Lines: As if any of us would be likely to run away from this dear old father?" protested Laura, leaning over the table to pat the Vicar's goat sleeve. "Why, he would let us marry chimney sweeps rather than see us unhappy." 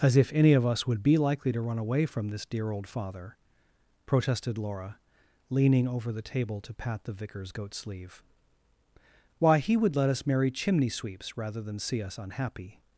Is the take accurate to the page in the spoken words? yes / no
yes